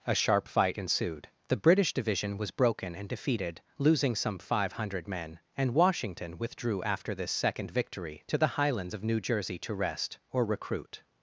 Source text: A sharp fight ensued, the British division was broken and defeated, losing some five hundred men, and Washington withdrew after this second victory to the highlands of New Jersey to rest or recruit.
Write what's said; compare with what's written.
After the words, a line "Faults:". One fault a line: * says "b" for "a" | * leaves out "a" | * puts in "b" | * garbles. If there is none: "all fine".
A sharp fight ensued, the British division was broken and defeated, losing some five hundred men, and Washington withdrew after this second victory to the highlands of New Jersey to rest or recruit.
Faults:
all fine